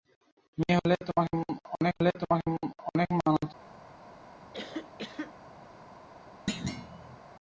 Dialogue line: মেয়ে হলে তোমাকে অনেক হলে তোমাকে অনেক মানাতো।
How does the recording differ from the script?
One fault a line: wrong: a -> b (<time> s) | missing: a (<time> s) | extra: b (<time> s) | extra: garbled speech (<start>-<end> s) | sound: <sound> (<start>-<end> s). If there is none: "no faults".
sound: cough (4.5-5.3 s)
sound: thud (6.5-7.2 s)